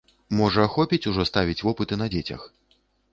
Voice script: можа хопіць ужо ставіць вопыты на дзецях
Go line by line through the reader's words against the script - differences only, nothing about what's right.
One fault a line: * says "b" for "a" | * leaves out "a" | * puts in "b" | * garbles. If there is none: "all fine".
all fine